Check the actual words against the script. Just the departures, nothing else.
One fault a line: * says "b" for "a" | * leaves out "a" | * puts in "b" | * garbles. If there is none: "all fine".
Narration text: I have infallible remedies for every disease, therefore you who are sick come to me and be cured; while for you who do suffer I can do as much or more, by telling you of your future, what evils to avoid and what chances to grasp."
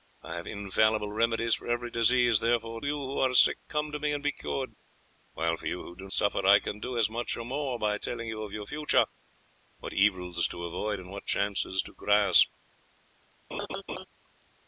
all fine